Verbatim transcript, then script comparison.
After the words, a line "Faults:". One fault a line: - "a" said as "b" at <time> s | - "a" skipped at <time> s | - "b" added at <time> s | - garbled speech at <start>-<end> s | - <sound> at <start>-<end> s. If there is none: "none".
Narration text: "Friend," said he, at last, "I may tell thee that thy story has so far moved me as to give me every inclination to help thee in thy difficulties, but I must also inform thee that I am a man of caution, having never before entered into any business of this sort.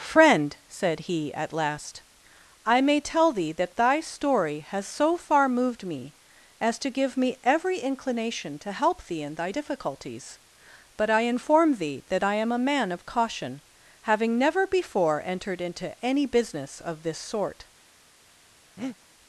"Friend," said he, at last, "I may tell thee that thy story has so far moved me as to give me every inclination to help thee in thy difficulties, but I inform thee that I am a man of caution, having never before entered into any business of this sort.
Faults:
- "must also" skipped at 11.2 s
- breath at 18.8-19.0 s